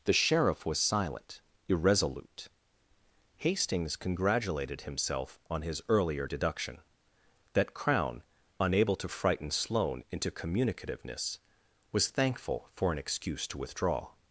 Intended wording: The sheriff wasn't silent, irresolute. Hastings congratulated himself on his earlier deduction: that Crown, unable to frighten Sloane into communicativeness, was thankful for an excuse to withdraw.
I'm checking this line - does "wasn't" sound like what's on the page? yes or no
no